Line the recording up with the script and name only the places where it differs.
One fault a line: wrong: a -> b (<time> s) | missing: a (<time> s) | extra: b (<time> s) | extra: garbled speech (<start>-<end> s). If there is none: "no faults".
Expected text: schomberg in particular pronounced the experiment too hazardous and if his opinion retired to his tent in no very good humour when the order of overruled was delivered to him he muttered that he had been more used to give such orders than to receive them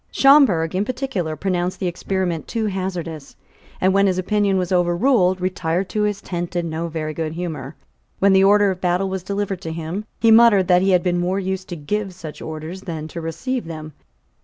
wrong: if -> when (3.9 s)
extra: was overruled (4.6 s)
wrong: overruled -> battle (8.8 s)